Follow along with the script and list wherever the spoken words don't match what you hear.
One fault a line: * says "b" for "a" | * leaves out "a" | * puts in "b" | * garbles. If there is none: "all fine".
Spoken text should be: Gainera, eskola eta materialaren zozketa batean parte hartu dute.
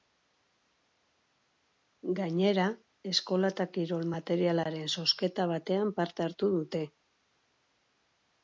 * puts in "kirol"